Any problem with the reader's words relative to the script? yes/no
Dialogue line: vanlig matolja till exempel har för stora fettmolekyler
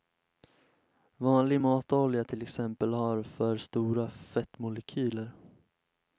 no